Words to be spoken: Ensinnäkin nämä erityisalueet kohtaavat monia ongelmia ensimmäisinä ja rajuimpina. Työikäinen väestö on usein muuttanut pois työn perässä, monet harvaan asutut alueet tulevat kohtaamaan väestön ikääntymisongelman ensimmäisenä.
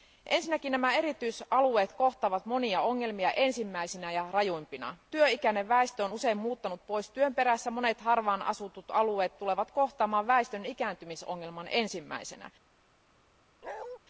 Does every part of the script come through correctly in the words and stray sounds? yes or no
no